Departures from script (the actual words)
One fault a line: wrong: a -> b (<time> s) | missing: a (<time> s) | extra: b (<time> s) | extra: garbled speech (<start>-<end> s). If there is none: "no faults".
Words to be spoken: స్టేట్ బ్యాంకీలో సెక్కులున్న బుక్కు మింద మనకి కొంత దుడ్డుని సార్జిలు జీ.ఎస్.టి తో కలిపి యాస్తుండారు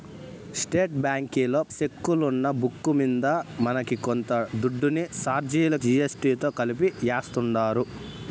no faults